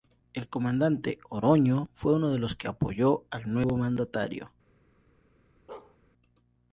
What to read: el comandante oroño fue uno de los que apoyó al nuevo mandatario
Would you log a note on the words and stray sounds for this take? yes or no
yes